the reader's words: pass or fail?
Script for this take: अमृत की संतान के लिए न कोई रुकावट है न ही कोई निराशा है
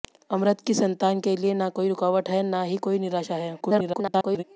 fail